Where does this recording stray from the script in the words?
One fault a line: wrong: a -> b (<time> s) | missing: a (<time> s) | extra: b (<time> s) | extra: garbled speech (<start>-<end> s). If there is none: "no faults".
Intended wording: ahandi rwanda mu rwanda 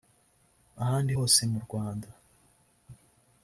wrong: rwanda -> hose (1.2 s)